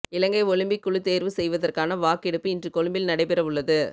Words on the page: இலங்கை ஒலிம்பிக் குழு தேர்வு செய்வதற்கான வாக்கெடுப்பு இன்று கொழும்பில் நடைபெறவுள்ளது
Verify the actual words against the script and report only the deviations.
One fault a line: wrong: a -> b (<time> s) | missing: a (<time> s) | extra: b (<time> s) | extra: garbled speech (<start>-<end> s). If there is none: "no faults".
no faults